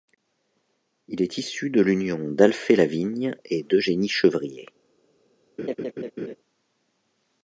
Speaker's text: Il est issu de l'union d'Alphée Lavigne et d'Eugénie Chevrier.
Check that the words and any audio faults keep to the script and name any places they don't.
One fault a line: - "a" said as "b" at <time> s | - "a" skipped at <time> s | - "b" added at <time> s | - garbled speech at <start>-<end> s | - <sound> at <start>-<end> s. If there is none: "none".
- laugh at 5.6-6.4 s